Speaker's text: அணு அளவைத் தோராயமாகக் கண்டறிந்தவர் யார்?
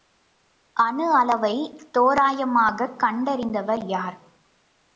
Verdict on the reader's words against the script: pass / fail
pass